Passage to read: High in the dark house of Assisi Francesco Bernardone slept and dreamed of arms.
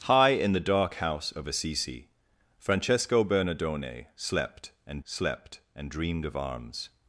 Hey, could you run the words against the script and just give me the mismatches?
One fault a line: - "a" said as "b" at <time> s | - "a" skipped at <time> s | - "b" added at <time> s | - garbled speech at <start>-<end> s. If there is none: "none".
- "slept and" added at 5.0 s